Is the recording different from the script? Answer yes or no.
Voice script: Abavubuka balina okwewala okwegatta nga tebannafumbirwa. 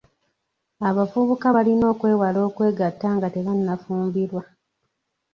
no